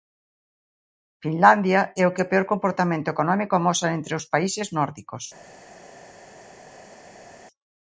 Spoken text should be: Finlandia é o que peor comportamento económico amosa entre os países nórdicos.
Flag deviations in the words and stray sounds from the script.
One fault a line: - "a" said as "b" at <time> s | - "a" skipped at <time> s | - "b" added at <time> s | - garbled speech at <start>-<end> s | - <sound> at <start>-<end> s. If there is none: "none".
none